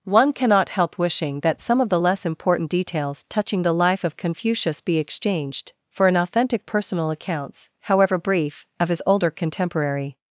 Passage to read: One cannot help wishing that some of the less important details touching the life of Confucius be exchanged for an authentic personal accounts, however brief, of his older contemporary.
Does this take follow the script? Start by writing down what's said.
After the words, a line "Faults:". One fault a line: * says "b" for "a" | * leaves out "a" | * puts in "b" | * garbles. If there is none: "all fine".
One cannot help wishing that some of the less important details touching the life of Confucius be exchanged for an authentic personal accounts, however brief, of his older contemporary.
Faults:
all fine